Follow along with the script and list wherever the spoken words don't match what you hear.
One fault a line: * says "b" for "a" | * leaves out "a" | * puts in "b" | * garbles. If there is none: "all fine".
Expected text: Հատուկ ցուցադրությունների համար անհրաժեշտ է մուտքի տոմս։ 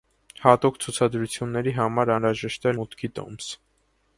all fine